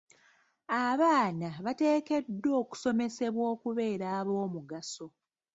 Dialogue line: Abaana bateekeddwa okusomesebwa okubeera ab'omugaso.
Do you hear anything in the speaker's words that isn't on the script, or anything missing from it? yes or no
no